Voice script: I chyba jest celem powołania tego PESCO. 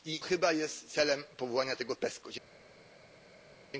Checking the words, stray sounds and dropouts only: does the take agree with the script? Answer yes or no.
yes